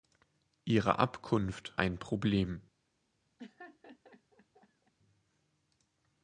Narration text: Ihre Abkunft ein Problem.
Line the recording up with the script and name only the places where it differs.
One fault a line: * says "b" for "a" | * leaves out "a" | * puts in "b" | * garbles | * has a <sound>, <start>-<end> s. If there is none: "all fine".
* has a laugh, 3.4-4.9 s